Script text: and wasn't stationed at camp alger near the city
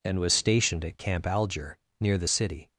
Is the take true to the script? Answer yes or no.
no